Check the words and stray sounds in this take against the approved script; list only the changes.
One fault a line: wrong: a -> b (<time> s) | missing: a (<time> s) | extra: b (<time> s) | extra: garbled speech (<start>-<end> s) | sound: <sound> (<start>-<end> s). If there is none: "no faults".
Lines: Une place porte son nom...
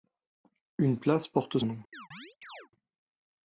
missing: son (1.6 s)
sound: chirp (1.9-2.7 s)